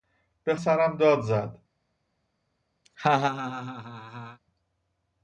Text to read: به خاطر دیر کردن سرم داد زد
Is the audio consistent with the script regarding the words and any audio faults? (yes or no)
no